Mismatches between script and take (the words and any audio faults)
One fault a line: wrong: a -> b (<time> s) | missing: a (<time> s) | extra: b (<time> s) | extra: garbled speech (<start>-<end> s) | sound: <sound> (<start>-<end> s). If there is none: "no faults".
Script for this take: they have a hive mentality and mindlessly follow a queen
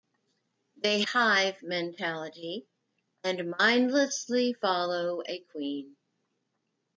missing: have a (1.0 s)